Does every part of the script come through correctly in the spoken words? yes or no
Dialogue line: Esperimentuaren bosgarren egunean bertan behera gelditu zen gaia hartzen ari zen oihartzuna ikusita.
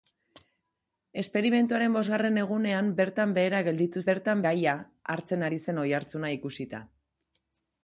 no